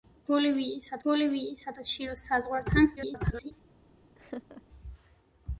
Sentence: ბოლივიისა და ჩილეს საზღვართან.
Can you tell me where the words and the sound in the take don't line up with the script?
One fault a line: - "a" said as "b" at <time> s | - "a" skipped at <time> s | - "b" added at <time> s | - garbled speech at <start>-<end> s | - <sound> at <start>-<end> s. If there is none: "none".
- "ბოლივიისა" added at 1.1 s
- garbled speech at 3.0-3.5 s
- laugh at 4.2-4.6 s